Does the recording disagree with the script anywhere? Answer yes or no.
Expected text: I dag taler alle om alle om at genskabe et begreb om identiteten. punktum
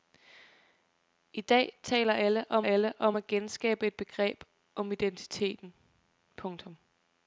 no